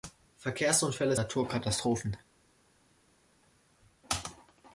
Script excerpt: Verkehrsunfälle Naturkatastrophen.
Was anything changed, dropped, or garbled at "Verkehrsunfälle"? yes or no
no